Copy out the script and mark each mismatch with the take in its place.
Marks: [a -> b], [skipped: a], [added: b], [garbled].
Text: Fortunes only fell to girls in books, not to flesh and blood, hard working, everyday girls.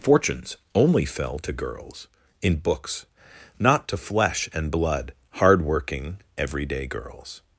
Fortunes only fell to girls in books, not to flesh and blood, hard working, everyday girls.